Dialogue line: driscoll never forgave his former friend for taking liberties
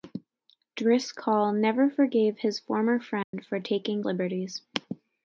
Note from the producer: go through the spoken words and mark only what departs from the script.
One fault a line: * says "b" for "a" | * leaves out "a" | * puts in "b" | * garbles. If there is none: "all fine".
all fine